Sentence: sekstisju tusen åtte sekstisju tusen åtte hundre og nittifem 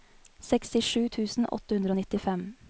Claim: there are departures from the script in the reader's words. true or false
true